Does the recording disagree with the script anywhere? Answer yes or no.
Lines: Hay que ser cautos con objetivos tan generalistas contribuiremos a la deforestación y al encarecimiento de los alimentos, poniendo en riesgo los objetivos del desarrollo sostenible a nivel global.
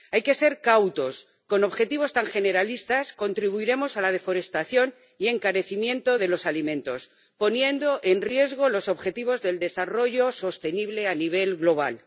no